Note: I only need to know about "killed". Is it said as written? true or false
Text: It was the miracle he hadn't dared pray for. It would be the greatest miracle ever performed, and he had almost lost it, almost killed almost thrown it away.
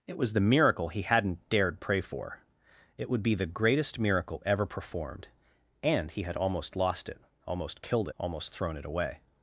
true